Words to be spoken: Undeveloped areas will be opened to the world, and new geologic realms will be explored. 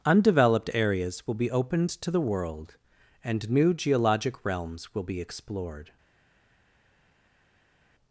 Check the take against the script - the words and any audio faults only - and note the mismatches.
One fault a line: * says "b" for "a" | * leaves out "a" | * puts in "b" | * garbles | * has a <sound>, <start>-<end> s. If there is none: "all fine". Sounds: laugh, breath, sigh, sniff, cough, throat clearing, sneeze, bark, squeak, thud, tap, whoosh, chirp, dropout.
all fine